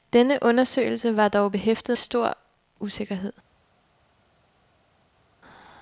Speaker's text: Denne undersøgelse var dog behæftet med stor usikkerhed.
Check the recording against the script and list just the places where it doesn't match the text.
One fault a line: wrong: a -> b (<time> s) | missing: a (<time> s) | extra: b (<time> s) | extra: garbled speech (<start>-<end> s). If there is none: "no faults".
missing: med (2.0 s)